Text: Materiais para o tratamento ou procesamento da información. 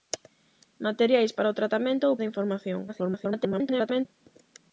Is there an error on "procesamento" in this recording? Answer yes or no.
yes